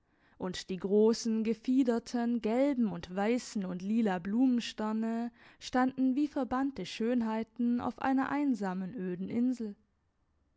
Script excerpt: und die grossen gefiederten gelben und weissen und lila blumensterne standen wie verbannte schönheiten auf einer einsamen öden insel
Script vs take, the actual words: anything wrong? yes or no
no